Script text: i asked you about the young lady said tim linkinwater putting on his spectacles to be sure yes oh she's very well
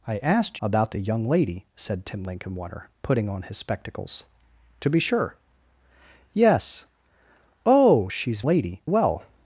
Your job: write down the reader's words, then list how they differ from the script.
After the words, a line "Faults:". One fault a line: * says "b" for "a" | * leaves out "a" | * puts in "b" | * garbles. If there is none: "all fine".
i asked about the young lady said tim linkinwater putting on his spectacles to be sure yes oh she's lady well
Faults:
* leaves out "you"
* says "lady" for "very"